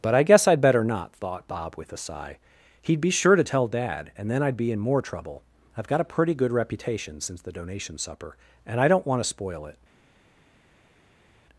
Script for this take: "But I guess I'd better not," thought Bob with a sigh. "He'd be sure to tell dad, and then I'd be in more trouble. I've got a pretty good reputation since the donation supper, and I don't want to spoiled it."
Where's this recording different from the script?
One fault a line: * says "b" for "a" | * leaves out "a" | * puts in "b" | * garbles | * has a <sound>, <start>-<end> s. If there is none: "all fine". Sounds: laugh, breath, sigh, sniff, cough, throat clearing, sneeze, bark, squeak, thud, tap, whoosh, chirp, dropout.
* says "spoil" for "spoiled"